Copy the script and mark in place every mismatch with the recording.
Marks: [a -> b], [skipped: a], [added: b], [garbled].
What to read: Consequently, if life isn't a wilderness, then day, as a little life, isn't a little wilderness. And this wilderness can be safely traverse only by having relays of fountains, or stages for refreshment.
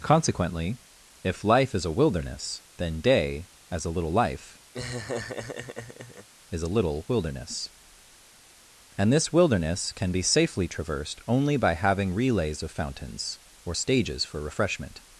Consequently, if life [isn't -> is] a wilderness, then day, as a little life, [isn't -> is] a little wilderness. And this wilderness can be safely [traverse -> traversed] only by having relays of fountains, or stages for refreshment.